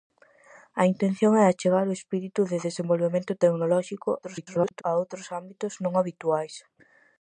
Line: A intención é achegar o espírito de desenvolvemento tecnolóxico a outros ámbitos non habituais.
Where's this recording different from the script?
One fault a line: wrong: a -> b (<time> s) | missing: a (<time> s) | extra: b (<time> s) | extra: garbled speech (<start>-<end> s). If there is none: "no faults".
extra: garbled speech (4.2-4.8 s)